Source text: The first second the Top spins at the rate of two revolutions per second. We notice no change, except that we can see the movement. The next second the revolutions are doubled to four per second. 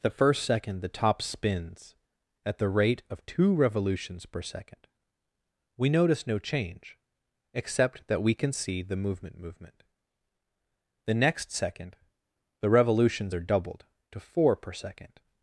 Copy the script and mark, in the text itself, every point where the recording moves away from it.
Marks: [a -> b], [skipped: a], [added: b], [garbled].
The first second the Top spins at the rate of two revolutions per second. We notice no change, except that we can see the movement. [added: movement] The next second the revolutions are doubled to four per second.